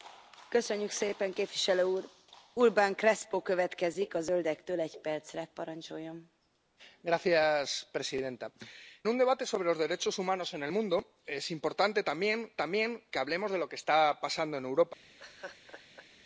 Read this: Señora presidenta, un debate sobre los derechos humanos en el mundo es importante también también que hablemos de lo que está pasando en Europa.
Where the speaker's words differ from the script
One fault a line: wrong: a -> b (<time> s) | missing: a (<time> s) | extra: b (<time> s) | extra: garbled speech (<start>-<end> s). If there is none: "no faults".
no faults